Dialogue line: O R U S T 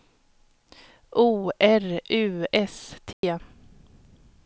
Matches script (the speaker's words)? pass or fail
pass